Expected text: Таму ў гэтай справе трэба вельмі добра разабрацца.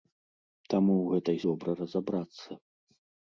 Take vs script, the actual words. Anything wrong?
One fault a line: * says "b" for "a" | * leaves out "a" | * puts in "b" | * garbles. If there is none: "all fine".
* leaves out "справе трэба вельмі"